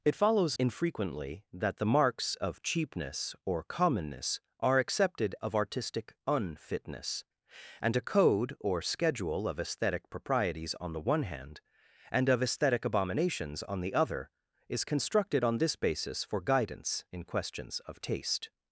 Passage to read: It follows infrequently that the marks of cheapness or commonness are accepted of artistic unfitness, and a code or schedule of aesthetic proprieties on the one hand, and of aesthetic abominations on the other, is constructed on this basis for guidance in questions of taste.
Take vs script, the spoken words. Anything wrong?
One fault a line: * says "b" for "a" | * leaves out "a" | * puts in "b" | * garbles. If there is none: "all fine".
all fine